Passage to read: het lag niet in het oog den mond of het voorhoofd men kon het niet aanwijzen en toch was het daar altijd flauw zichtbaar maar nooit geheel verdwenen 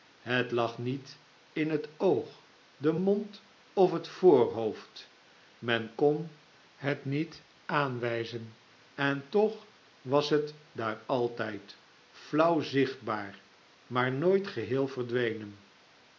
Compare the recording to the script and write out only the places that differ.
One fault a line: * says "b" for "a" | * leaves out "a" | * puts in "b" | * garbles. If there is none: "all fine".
all fine